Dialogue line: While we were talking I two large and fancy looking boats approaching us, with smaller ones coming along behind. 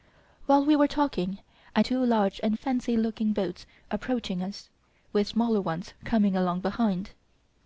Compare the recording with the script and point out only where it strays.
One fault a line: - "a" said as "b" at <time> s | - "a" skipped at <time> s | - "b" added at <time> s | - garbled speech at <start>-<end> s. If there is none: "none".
none